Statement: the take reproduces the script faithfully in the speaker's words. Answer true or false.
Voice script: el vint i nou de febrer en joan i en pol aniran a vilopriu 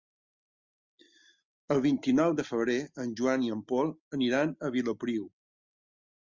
true